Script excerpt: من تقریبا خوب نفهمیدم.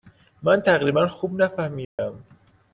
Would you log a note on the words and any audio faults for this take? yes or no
yes